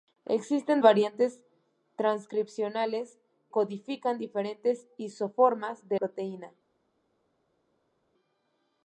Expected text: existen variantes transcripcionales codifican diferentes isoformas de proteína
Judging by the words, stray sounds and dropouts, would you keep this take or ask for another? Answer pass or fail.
pass